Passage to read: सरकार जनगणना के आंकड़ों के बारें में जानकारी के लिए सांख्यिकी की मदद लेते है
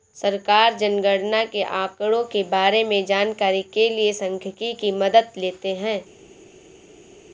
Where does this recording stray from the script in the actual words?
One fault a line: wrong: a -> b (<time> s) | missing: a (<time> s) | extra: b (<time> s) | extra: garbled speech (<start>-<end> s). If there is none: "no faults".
no faults